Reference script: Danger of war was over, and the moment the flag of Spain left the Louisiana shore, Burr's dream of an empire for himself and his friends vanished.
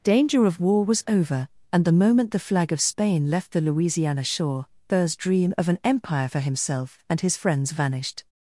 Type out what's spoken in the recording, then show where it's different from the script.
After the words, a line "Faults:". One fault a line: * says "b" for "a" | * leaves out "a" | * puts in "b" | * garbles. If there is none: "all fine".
Danger of war was over, and the moment the flag of Spain left the Louisiana shore, Burr's dream of an empire for himself and his friends vanished.
Faults:
all fine